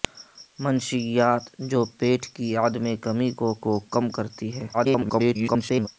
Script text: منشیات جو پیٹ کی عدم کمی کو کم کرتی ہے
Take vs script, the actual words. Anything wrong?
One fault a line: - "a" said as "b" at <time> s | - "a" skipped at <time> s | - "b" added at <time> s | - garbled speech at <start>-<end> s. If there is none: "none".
- "کو" added at 3.6 s
- garbled speech at 4.7-5.9 s